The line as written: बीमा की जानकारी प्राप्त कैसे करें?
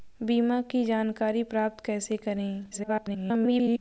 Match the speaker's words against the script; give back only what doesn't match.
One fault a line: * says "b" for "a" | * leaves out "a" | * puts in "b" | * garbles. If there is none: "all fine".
* garbles